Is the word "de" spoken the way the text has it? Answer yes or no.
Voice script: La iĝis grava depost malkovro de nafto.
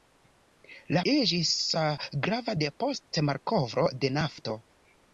yes